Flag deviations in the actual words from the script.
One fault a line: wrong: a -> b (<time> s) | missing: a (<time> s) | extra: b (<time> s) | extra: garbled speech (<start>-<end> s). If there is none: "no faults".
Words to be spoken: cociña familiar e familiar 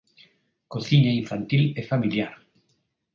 wrong: familiar -> infantil (1.2 s)